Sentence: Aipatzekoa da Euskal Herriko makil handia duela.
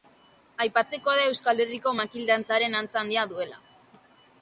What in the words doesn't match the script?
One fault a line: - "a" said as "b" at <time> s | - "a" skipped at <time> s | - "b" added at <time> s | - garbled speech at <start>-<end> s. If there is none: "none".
- "dantzaren antza" added at 2.3 s